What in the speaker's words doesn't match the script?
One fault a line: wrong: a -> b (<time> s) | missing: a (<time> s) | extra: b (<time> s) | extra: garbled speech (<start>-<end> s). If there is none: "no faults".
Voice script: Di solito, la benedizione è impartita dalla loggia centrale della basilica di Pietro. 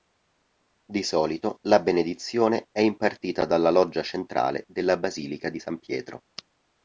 extra: San (5.6 s)